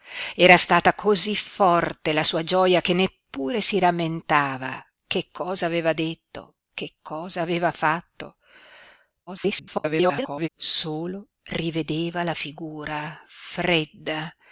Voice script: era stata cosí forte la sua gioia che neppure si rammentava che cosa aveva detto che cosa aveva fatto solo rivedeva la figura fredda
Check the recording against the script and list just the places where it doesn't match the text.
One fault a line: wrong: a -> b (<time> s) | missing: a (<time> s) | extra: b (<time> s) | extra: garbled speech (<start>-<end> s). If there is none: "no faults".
extra: garbled speech (9.3-10.5 s)